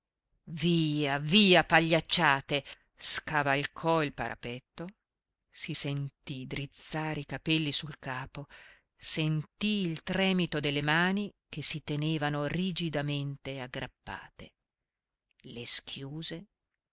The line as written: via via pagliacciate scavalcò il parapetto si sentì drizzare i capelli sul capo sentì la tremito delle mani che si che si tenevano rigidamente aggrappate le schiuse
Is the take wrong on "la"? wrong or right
wrong